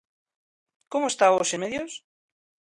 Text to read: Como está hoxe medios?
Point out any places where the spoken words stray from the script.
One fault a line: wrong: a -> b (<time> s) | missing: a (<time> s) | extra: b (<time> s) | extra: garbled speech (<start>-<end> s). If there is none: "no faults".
no faults